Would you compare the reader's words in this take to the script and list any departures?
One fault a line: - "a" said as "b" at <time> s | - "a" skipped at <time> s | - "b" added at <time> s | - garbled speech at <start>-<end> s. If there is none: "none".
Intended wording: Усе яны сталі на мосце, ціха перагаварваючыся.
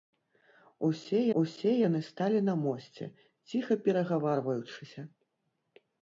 - "усе" added at 1.4 s